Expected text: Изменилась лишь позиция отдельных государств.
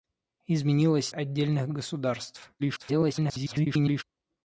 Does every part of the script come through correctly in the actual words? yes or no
no